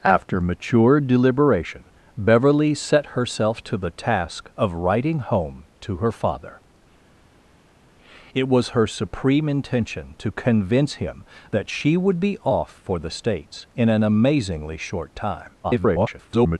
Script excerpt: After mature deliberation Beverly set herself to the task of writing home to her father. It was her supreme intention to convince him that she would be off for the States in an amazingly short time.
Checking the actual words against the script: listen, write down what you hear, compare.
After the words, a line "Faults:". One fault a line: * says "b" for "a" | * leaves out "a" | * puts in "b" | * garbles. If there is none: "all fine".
After mature deliberation Beverly set herself to the task of writing home to her father. It was her supreme intention to convince him that she would be off for the States in an amazingly short time. [garbled]
Faults:
* garbles